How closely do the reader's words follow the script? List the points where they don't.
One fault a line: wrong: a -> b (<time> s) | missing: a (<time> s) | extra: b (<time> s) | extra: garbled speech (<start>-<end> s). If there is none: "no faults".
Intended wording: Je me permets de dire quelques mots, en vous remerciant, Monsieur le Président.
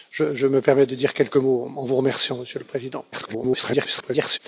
extra: garbled speech (3.1-4.4 s)